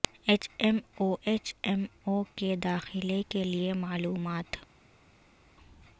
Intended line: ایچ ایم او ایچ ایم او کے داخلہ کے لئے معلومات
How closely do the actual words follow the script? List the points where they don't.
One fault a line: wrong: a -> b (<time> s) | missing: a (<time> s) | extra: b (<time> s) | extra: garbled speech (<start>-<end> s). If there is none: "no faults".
no faults